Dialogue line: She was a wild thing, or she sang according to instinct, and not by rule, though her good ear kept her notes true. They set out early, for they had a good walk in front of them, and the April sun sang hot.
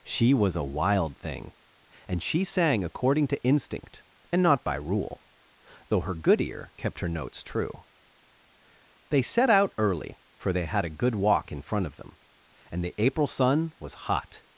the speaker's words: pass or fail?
fail